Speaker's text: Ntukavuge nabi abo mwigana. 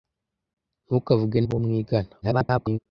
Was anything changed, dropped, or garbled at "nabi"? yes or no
yes